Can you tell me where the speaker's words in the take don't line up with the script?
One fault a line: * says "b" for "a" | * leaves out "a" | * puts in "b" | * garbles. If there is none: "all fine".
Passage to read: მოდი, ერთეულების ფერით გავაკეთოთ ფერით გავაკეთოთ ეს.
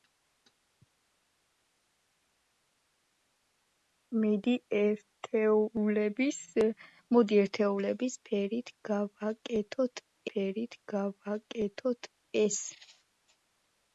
all fine